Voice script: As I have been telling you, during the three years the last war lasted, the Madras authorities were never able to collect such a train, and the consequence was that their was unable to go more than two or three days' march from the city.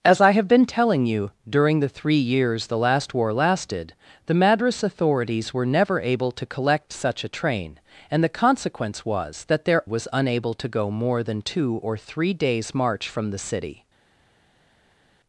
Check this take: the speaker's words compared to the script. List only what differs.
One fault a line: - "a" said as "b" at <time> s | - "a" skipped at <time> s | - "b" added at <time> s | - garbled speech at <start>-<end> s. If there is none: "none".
none